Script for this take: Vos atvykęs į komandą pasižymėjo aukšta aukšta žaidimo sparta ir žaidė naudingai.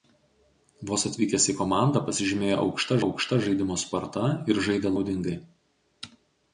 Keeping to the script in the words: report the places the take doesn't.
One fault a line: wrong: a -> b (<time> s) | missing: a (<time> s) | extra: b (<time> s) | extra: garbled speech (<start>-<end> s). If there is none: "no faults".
no faults